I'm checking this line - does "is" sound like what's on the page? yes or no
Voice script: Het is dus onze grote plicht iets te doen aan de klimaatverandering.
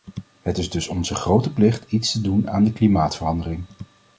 yes